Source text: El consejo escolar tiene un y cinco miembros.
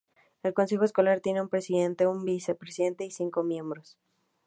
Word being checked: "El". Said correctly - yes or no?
yes